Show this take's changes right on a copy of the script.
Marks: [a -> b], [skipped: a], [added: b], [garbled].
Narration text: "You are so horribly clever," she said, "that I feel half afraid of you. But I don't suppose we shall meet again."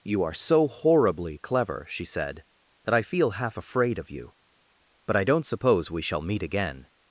"You are so horribly clever," she said, "that I feel half afraid of you. But I don't suppose we shall meet again."